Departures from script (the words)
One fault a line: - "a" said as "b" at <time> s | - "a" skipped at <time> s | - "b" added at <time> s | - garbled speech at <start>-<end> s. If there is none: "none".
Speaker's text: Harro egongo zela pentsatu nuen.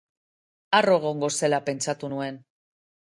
none